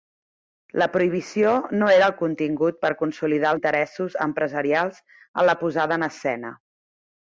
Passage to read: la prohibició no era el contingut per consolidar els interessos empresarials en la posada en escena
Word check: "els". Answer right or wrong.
wrong